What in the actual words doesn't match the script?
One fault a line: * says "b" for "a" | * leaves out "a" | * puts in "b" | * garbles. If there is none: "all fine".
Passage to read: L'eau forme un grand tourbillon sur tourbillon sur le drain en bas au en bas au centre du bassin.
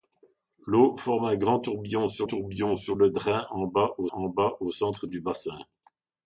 all fine